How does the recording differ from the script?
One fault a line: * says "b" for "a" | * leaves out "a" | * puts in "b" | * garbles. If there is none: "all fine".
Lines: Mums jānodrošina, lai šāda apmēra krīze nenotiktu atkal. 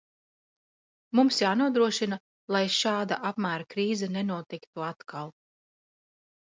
all fine